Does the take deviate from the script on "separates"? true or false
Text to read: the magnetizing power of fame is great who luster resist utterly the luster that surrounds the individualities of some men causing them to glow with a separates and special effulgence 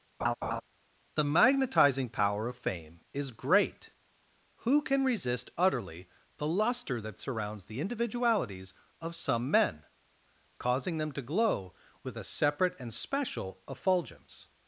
true